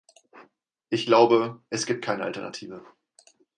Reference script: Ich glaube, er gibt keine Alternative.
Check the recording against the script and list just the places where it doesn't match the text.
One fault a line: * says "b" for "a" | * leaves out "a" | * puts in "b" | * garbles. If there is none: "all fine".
* says "es" for "er"